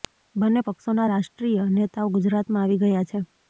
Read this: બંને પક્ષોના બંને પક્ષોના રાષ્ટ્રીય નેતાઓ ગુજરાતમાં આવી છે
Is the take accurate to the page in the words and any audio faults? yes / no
no